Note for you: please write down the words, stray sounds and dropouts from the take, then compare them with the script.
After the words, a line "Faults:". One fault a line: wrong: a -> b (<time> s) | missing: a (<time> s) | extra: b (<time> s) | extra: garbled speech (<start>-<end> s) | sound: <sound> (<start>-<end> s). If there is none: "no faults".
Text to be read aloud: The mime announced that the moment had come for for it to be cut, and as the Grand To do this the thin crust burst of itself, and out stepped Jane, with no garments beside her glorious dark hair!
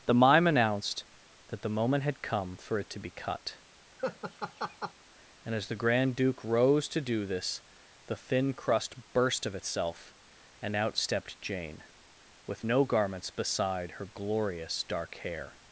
The mime announced that the moment had come for it to be cut, and as the Grand Duke rose to do this the thin crust burst of itself, and out stepped Jane, with no garments beside her glorious dark hair!
Faults:
missing: for (2.8 s)
sound: laugh (4.0-4.9 s)
extra: Duke rose (6.2 s)